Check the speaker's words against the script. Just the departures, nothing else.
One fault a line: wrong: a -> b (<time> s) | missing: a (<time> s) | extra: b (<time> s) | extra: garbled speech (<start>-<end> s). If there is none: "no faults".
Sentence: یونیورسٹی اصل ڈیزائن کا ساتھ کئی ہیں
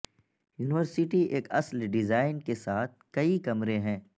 extra: ایک (1.2 s)
wrong: کا -> کے (2.4 s)
extra: کمرے (3.4 s)